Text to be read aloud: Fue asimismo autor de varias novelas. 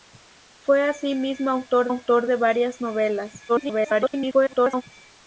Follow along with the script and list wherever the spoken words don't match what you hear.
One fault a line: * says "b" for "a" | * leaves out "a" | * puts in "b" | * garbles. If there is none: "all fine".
* puts in "autor"
* garbles